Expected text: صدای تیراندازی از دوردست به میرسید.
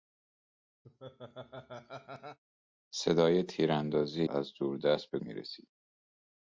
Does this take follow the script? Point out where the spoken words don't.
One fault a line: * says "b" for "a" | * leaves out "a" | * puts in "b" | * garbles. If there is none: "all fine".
all fine